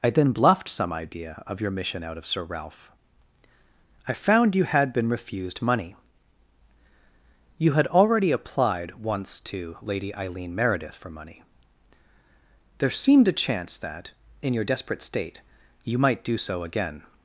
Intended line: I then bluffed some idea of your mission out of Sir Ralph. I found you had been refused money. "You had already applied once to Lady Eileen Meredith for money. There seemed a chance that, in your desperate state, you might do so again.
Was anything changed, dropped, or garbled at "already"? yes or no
no